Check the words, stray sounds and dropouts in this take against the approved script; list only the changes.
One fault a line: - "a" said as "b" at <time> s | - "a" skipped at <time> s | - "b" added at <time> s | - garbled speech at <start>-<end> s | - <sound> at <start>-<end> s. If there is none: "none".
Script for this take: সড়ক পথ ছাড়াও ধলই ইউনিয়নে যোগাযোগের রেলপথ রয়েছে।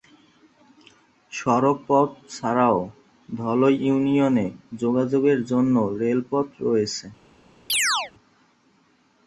- "জন্য" added at 5.5 s
- chirp at 7.7-8.1 s